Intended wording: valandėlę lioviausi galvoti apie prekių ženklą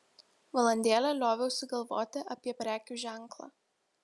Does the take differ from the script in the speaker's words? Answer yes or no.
no